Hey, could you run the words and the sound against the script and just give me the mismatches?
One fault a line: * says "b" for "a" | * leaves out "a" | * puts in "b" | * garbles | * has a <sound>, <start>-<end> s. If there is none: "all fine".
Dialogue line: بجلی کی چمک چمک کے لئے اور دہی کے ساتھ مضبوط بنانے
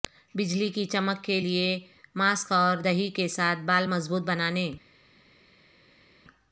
* leaves out "چمک"
* puts in "ماسک"
* puts in "بال"